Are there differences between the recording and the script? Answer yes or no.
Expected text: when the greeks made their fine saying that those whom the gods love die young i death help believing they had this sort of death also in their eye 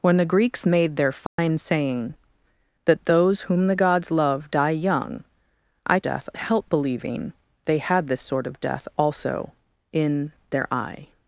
no